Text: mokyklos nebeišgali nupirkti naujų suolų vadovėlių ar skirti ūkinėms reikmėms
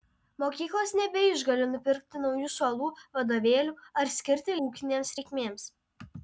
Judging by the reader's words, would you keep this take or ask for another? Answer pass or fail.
pass